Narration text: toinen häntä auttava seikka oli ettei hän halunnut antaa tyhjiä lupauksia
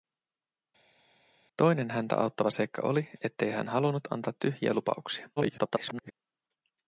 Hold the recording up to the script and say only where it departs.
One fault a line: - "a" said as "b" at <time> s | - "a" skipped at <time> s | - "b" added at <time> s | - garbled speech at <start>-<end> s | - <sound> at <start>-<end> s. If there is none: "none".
- garbled speech at 5.4-6.1 s